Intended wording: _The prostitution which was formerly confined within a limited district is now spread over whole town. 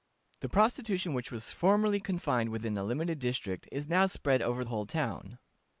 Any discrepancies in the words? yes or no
no